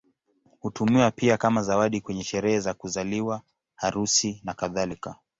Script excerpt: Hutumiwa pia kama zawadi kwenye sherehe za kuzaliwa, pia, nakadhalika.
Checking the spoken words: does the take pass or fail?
fail